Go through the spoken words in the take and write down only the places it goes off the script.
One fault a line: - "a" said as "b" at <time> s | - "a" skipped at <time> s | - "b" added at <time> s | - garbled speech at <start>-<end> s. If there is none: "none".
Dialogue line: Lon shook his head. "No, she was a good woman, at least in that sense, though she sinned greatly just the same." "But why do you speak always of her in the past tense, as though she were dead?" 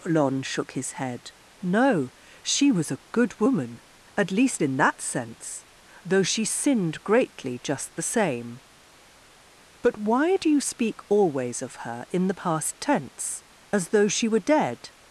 none